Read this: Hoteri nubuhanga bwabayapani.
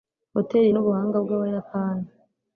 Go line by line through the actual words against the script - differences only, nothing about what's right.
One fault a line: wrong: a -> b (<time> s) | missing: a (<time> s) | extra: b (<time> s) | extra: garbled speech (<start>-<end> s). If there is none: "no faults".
no faults